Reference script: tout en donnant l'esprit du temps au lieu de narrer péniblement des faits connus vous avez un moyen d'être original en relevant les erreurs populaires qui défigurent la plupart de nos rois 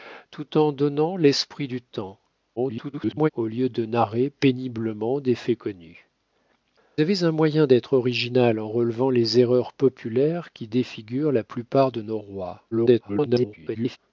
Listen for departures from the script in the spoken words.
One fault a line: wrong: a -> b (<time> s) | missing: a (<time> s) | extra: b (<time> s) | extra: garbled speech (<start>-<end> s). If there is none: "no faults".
extra: garbled speech (2.6-3.3 s)
missing: vous (6.1 s)
extra: garbled speech (12.7-14.0 s)